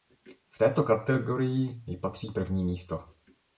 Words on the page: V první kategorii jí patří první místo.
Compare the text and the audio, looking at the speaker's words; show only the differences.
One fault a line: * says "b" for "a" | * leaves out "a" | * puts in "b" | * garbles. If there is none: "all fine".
* says "této" for "první"